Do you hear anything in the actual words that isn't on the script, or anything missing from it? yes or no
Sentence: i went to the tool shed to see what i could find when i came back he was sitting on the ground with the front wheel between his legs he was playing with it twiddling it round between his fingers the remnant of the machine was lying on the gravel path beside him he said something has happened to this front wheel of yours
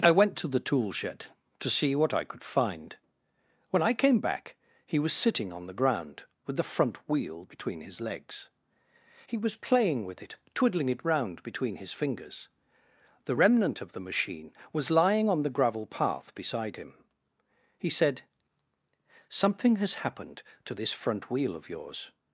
no